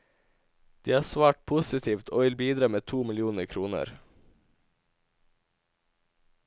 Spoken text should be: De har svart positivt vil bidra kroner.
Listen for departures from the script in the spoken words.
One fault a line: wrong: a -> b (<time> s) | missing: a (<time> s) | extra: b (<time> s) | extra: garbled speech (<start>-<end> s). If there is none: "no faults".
extra: og (2.1 s)
extra: med to millioner (2.7 s)